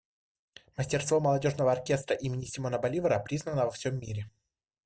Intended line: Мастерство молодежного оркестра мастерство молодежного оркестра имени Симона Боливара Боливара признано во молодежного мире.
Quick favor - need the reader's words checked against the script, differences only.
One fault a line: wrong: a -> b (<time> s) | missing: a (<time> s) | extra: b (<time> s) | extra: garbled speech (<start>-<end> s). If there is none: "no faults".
missing: мастерство молодежного оркестра (2.1 s)
missing: Боливара (3.2 s)
wrong: молодежного -> всем (3.7 s)